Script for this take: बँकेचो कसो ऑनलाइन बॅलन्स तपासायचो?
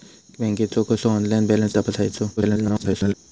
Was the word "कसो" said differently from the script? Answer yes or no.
no